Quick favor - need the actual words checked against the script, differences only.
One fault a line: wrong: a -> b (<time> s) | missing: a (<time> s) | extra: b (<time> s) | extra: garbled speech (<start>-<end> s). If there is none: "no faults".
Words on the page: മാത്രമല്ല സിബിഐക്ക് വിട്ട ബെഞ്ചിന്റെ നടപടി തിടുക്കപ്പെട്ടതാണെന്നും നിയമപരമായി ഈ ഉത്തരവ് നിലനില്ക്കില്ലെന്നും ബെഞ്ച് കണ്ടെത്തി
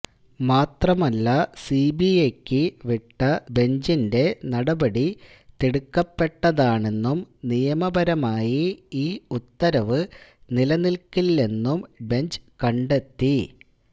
no faults